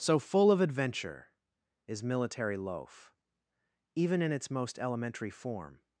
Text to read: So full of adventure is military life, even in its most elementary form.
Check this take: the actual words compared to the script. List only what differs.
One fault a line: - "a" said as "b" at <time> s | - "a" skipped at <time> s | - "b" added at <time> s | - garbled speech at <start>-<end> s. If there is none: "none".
- "life" said as "loaf" at 2.6 s